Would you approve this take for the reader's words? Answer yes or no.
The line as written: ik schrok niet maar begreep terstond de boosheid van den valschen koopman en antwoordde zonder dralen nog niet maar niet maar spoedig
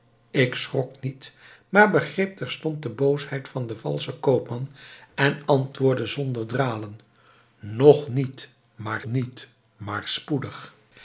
yes